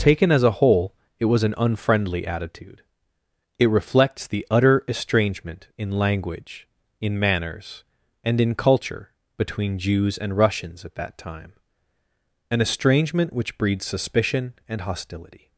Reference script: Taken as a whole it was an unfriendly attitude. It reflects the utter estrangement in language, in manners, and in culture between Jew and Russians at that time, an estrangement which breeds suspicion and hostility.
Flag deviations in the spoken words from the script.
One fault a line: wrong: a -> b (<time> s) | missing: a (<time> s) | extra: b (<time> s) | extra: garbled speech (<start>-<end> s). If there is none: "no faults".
wrong: Jew -> Jews (9.8 s)